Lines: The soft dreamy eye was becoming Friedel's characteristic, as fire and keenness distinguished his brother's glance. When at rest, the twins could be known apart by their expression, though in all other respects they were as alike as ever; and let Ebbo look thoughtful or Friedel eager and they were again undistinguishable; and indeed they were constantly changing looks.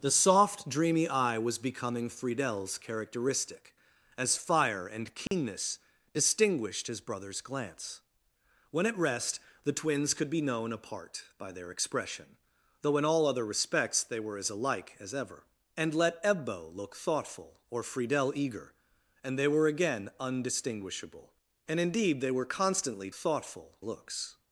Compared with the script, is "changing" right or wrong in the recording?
wrong